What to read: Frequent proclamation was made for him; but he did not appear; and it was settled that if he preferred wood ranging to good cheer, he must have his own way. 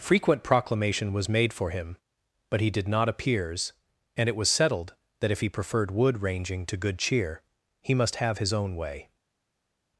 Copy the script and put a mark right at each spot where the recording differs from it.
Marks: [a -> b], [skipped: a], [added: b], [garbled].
Frequent proclamation was made for him; but he did not [appear; -> appears] and it was settled that if he preferred wood ranging to good cheer, he must have his own way.